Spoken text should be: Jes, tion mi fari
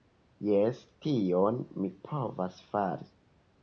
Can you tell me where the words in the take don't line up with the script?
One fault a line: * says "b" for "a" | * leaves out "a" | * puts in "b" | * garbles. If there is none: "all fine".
* puts in "povas"